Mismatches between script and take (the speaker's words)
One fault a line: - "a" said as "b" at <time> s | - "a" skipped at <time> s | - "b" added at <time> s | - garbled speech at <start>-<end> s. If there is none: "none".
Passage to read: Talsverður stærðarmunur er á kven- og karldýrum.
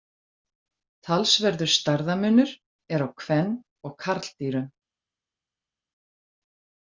none